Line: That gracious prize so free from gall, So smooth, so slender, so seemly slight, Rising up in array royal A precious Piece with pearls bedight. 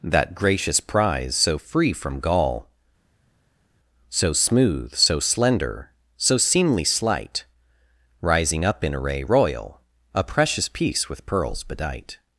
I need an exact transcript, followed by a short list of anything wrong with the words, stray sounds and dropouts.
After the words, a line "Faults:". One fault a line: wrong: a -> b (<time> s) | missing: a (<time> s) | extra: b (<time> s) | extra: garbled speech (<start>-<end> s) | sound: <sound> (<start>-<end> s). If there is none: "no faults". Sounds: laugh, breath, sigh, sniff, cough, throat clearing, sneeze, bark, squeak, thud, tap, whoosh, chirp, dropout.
That gracious prize so free from gall, So smooth, so slender, so seemly slight, Rising up in array royal A precious Piece with pearls bedight.
Faults:
no faults